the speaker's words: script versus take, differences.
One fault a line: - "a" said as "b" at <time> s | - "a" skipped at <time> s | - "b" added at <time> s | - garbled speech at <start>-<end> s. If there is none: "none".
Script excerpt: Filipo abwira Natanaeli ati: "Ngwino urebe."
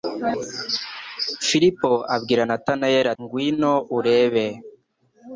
- "ati" skipped at 3.1 s